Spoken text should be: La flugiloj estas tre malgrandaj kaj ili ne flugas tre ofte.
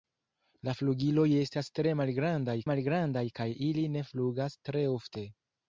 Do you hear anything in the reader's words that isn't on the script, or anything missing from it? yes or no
yes